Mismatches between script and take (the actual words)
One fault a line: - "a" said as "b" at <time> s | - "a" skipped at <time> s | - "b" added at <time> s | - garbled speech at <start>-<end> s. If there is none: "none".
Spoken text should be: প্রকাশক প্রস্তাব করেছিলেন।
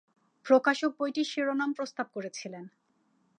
- "বইটির শিরোনাম" added at 1.0 s